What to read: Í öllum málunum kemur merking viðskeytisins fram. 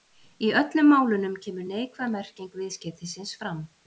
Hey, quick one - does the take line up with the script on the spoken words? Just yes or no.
no